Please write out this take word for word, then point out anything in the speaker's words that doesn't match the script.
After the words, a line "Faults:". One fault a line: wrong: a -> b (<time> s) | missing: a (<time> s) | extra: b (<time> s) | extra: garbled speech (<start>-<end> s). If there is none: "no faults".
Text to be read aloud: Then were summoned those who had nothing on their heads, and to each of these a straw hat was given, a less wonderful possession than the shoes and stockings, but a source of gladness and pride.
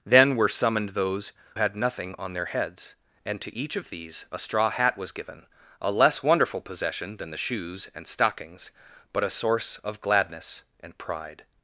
Then were summoned those had nothing on their heads, and to each of these a straw hat was given, a less wonderful possession than the shoes and stockings, but a source of gladness and pride.
Faults:
missing: who (1.3 s)